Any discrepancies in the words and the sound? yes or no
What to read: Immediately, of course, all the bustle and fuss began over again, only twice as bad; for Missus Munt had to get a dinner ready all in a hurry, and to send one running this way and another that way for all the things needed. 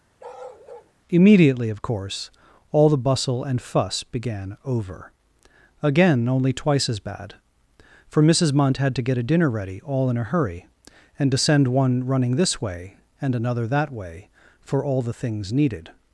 yes